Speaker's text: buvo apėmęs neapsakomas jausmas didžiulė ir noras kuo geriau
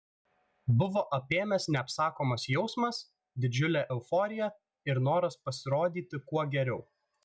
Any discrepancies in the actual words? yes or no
yes